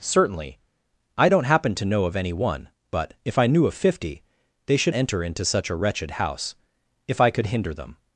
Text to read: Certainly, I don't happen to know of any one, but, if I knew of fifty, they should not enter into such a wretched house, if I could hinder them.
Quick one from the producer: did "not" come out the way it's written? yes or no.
no